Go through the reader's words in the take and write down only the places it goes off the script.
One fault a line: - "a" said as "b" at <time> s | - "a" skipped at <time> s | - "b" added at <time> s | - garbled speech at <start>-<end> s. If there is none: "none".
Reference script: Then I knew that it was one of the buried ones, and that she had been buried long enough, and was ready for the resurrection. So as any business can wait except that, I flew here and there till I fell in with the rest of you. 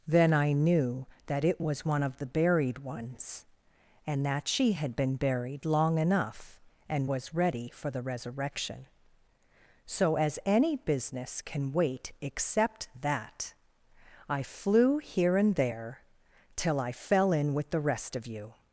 none